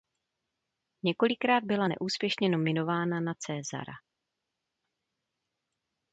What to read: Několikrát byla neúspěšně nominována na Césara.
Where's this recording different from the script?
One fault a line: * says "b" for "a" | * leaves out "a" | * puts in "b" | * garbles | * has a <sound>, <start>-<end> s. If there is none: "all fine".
all fine